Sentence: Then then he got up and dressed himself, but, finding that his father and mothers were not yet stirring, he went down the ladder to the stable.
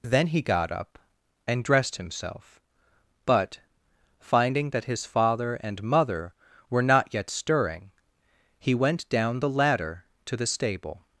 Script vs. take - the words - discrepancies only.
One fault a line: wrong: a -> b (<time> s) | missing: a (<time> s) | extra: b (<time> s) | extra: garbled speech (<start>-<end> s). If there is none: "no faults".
missing: then (0.3 s)
wrong: mothers -> mother (5.8 s)